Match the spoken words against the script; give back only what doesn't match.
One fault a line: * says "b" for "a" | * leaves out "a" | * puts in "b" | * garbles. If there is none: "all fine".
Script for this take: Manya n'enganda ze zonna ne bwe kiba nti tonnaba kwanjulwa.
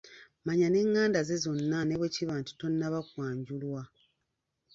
all fine